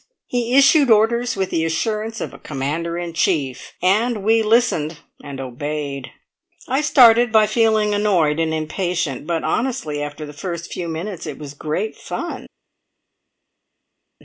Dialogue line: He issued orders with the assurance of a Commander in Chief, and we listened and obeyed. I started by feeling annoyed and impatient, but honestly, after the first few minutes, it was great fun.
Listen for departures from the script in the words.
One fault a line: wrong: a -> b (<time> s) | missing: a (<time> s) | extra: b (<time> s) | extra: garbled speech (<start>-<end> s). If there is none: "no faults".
no faults